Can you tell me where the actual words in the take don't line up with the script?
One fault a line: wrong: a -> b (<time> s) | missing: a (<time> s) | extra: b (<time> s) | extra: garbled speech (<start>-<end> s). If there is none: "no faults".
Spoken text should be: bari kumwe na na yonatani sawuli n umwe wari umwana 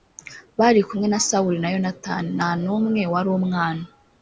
extra: sawuli (1.3 s)
wrong: sawuli -> nta (2.4 s)